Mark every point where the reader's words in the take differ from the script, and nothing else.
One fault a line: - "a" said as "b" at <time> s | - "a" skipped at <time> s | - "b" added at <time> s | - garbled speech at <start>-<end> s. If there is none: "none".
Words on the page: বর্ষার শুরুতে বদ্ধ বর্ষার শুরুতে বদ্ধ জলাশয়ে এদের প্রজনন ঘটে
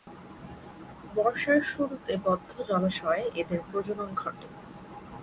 - "বর্ষার শুরুতে বদ্ধ" skipped at 2.5 s